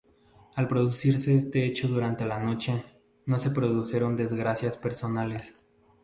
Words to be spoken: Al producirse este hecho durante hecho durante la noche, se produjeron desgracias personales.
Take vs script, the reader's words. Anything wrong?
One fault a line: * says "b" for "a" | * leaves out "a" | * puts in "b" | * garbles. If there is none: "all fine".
* leaves out "hecho durante"
* puts in "no"